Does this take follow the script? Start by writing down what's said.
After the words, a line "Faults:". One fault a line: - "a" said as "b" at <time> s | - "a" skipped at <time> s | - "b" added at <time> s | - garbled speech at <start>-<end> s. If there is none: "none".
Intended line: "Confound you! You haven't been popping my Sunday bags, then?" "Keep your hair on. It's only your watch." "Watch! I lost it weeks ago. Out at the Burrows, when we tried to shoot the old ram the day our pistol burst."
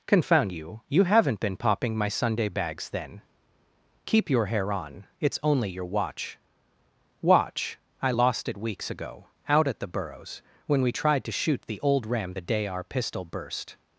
"Confound you! You haven't been popping my Sunday bags, then?" "Keep your hair on. It's only your watch." "Watch! I lost it weeks ago. Out at the Burrows, when we tried to shoot the old ram the day our pistol burst."
Faults:
none